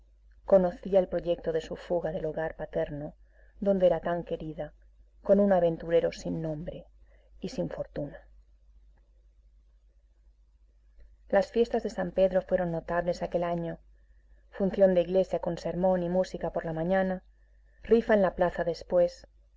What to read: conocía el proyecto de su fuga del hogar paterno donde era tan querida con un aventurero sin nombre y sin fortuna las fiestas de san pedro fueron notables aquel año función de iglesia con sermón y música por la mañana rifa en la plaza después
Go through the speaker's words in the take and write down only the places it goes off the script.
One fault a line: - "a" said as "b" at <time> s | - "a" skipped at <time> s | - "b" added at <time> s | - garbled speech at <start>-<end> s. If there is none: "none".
none